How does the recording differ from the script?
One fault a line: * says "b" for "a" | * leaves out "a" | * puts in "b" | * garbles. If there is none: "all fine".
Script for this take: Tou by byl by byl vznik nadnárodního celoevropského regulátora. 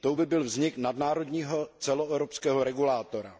* leaves out "by byl"